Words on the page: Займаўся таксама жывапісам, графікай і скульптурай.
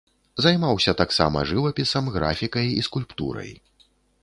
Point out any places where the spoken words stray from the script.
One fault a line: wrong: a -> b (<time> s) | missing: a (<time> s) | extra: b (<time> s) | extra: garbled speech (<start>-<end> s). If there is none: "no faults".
no faults